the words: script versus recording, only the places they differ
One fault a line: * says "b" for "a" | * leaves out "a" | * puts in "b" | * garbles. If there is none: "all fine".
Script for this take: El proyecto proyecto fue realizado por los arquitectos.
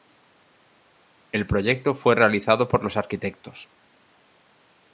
* leaves out "proyecto"